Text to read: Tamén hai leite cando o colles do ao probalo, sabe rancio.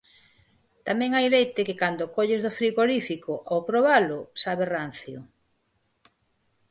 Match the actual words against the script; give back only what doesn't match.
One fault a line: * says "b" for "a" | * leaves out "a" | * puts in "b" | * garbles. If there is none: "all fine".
* puts in "que"
* puts in "frigorífico"